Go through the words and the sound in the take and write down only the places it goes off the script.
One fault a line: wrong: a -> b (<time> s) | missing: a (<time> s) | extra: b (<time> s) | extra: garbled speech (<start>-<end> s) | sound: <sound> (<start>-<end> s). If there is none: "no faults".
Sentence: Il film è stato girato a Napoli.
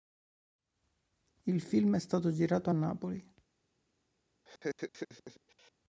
sound: laugh (4.4-5.7 s)